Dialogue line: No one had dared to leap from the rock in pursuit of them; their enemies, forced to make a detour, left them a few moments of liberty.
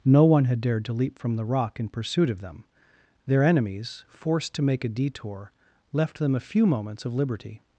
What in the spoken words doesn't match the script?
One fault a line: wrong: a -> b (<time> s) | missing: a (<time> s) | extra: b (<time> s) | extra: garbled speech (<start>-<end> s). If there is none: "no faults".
no faults